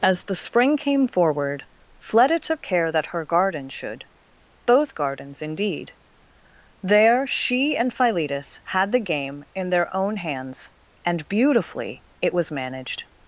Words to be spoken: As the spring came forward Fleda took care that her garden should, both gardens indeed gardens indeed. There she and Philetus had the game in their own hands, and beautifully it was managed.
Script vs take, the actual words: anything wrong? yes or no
yes